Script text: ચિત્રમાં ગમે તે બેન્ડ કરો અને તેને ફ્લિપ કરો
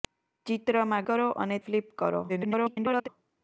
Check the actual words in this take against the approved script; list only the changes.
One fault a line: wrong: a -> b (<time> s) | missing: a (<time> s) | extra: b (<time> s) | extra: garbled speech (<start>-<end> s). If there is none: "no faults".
missing: ગમે તે બેન્ડ (1.1 s)
missing: તેને (1.6 s)
extra: garbled speech (2.3-3.1 s)